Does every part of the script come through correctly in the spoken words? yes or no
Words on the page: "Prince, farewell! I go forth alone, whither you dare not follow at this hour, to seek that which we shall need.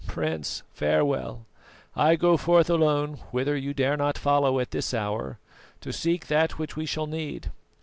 yes